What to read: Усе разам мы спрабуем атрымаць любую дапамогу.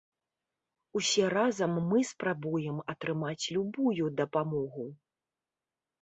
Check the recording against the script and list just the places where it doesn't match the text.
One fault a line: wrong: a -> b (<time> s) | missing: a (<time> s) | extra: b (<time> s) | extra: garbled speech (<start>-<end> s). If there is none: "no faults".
no faults